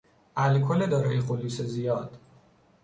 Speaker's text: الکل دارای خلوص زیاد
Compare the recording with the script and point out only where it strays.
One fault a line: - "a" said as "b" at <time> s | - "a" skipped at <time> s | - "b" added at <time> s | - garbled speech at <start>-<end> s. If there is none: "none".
none